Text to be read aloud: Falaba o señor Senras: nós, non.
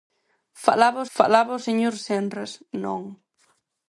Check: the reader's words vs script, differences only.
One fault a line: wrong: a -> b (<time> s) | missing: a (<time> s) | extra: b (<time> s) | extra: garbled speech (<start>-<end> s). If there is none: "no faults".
extra: falaba (1.2 s)
missing: nós (2.5 s)